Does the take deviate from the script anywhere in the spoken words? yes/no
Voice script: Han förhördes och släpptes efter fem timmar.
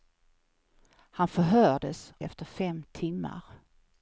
yes